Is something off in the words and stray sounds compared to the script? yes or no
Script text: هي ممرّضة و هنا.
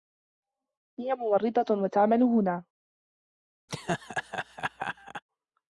yes